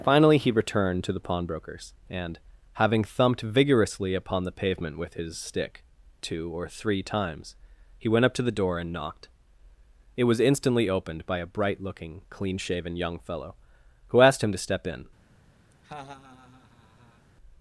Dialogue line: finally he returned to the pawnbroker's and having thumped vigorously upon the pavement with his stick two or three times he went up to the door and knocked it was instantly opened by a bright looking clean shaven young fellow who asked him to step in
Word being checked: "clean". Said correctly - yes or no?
yes